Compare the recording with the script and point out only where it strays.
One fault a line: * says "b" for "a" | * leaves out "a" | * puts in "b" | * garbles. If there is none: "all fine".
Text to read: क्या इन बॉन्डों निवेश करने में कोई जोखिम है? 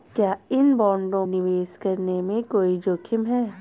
all fine